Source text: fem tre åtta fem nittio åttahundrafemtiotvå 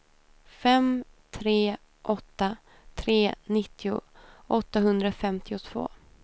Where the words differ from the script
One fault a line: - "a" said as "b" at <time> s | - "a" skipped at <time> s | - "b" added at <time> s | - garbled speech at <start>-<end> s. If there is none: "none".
- "fem" said as "tre" at 3.0 s